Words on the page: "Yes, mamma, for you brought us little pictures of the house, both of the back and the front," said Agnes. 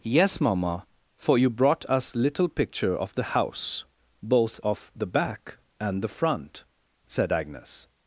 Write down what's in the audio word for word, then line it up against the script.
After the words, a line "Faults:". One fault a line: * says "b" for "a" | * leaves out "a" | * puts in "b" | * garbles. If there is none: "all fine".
"Yes, mamma, for you brought us little picture of the house, both of the back and the front," said Agnes.
Faults:
* says "picture" for "pictures"